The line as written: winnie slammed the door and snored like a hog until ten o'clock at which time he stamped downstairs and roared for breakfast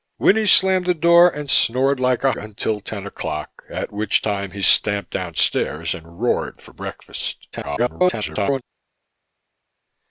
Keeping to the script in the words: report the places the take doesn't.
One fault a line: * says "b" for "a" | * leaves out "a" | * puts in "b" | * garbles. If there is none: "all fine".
* leaves out "hog"
* garbles